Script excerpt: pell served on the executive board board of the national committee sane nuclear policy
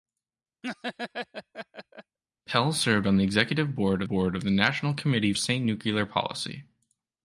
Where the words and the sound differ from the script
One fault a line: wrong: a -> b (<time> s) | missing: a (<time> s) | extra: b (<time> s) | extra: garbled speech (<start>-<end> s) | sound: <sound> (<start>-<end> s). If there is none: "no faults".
sound: laugh (0.6-2.2 s)